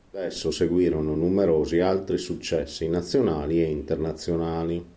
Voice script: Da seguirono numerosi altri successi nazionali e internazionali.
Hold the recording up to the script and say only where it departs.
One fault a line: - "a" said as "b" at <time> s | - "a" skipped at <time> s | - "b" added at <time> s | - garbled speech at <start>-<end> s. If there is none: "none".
- "esso" added at 0.2 s